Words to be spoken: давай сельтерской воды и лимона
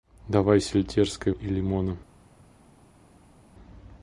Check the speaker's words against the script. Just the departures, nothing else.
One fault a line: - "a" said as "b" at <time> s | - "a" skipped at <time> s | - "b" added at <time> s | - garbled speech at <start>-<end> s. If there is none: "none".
- "воды" skipped at 1.3 s